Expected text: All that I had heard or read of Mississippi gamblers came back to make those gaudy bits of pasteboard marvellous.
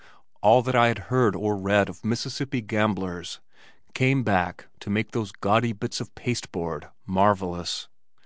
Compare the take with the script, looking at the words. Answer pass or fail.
pass